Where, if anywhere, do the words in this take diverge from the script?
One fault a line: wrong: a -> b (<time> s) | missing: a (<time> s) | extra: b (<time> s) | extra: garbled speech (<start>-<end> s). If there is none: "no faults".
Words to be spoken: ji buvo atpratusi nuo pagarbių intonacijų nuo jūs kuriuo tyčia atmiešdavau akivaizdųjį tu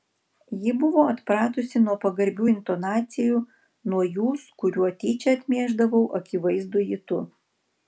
no faults